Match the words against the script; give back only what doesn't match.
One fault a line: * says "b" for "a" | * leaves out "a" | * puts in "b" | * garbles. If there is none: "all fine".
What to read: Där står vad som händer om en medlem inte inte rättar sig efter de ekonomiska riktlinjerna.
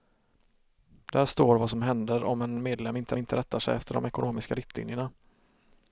all fine